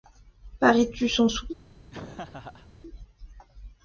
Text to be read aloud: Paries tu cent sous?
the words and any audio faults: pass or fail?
fail